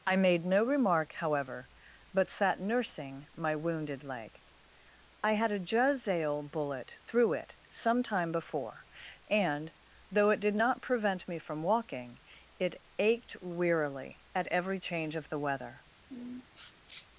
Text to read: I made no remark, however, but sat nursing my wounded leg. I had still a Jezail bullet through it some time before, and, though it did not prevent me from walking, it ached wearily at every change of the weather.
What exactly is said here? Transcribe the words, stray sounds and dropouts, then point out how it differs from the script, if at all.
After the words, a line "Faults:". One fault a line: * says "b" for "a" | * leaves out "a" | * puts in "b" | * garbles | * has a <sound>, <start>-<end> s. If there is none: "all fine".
I made no remark, however, but sat nursing my wounded leg. I had a Jezail bullet through it some time before, and, though it did not prevent me from walking, it ached wearily at every change of the weather.
Faults:
* leaves out "still"
* has a sniff, 16.1-17.1 s